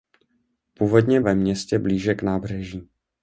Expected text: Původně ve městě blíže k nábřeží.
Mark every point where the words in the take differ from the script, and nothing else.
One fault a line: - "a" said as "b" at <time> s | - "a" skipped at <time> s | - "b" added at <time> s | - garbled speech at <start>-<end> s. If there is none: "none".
none